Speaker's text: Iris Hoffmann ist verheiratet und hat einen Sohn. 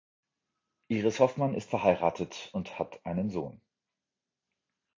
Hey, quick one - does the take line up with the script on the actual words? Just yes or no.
yes